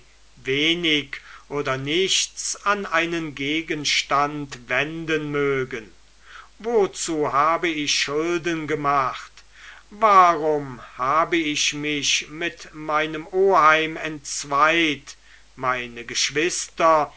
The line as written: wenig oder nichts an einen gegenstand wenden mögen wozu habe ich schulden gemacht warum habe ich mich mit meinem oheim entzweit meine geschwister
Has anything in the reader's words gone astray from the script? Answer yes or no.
no